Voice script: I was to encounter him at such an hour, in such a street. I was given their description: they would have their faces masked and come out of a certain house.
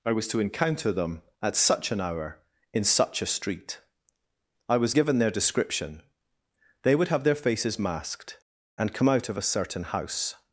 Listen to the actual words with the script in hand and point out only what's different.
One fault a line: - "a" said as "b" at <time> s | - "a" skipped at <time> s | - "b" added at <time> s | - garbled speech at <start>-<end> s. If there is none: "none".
- "him" said as "them" at 0.9 s